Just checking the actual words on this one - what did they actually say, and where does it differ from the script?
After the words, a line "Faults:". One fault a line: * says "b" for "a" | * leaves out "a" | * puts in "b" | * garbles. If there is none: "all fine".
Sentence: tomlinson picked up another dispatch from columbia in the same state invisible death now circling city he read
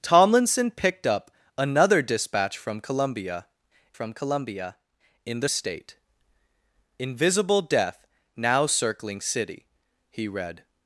tomlinson picked up another dispatch from columbia from columbia in the state invisible death now circling city he read
Faults:
* puts in "from columbia"
* leaves out "same"